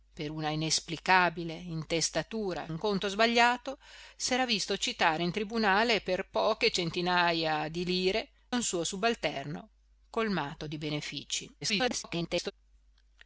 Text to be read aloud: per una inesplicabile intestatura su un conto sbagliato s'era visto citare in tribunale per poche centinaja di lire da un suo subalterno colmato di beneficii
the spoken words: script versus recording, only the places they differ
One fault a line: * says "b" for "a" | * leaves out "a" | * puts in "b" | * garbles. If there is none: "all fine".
* leaves out "su"
* leaves out "da"
* garbles